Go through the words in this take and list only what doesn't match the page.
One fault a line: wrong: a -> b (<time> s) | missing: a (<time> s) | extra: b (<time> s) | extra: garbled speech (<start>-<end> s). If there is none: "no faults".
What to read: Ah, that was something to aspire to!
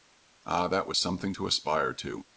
no faults